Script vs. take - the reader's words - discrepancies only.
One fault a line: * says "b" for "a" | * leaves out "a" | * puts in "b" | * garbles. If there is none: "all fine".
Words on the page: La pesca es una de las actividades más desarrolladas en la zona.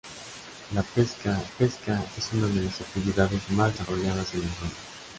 * puts in "pesca"